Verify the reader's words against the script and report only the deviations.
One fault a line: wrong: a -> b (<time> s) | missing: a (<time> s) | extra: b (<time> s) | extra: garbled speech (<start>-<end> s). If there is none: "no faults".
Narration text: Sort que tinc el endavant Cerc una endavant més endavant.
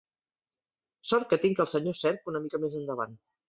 wrong: endavant -> senyor (1.8 s)
wrong: endavant -> mica (2.5 s)